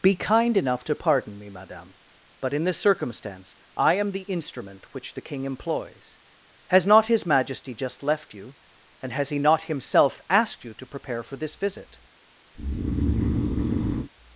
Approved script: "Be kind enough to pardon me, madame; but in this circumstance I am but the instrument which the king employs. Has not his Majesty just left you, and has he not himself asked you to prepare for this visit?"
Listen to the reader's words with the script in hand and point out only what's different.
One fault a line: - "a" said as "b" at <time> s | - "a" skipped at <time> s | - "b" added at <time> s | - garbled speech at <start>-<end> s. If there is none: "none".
- "but" skipped at 4.1 s